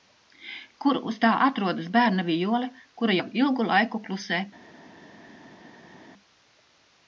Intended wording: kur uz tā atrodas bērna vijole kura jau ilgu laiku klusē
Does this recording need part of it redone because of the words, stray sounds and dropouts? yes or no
no